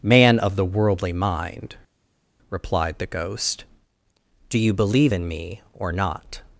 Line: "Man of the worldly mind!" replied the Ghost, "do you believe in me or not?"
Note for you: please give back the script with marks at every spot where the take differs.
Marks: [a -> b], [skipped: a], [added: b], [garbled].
"Man of the worldly mind!" replied the Ghost, "do you believe in me or not?"